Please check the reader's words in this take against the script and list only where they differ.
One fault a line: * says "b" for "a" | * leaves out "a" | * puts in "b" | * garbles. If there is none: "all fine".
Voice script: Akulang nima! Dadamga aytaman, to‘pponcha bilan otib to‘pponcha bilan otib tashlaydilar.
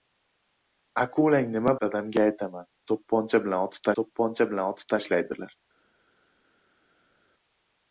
all fine